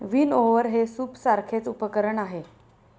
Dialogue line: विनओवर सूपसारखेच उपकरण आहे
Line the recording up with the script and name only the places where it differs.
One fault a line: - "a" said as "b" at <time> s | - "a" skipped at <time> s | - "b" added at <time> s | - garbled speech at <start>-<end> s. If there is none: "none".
- "हे" added at 0.7 s